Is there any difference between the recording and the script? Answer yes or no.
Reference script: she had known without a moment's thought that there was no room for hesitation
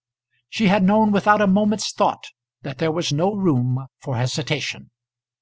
no